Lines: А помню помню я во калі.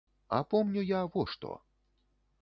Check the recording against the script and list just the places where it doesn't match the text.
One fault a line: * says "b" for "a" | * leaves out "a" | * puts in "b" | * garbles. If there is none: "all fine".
* leaves out "помню"
* says "што" for "калі"